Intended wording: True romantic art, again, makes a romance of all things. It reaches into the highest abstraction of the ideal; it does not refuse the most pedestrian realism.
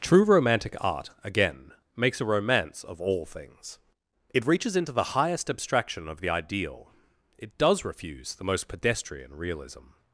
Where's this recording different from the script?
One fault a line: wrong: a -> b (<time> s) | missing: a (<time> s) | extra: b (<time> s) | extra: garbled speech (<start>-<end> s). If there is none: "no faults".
missing: not (7.8 s)